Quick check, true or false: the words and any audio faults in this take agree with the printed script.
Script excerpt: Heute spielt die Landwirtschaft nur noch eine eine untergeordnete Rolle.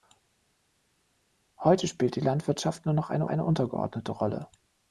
true